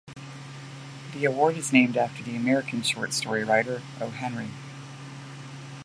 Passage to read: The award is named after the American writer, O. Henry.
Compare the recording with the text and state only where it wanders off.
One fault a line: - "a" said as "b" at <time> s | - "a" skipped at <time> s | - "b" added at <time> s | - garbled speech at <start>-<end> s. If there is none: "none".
- "short story" added at 2.8 s